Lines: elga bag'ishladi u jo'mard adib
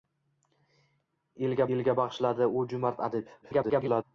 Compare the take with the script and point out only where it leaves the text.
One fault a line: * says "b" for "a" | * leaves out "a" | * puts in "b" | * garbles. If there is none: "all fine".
* puts in "elga"
* garbles